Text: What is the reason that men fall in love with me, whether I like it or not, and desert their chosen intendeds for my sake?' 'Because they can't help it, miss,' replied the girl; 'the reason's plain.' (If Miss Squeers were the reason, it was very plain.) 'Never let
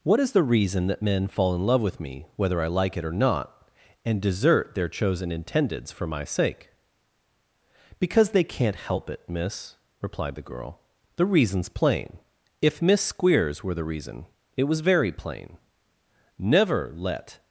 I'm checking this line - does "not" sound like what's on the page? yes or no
yes